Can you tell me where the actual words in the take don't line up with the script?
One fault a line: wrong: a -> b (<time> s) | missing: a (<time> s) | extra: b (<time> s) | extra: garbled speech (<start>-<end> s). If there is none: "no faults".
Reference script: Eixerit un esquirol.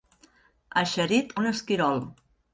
no faults